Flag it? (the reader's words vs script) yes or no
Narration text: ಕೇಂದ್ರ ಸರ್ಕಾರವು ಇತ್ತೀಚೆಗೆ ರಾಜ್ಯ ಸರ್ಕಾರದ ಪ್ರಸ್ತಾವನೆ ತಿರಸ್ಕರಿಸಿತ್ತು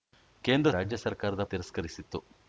yes